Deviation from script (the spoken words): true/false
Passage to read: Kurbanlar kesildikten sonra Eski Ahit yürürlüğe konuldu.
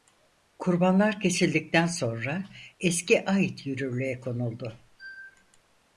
false